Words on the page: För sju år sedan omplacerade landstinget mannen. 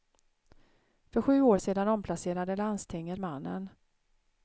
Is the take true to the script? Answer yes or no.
yes